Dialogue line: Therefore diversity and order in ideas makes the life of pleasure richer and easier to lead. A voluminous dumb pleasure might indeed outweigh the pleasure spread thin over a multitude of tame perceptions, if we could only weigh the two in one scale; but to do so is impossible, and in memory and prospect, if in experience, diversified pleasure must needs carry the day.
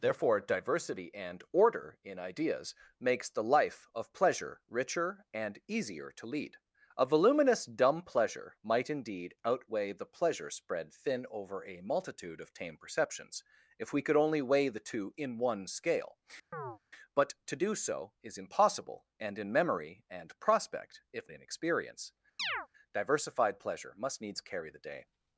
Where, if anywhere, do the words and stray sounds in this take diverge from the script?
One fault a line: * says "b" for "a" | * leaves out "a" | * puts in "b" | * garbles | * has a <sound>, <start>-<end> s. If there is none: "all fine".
* has a chirp, 16.5-16.8 s
* has a chirp, 22.4-22.7 s